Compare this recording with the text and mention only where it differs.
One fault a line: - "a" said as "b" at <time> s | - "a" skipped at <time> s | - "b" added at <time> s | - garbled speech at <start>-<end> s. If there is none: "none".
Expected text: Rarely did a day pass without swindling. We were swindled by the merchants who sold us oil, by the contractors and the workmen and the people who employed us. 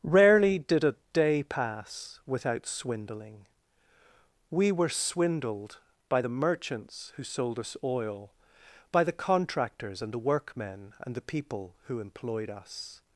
none